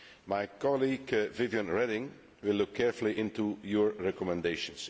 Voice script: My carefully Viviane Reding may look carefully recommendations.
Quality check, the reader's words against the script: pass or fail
fail